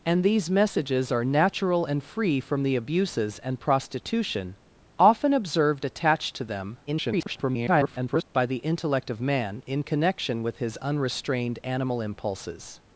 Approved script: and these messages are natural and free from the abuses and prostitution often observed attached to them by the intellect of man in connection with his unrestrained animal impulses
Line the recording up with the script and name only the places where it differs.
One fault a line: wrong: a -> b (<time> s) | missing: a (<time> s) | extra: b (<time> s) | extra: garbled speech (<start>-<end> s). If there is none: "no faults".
extra: garbled speech (6.9-8.2 s)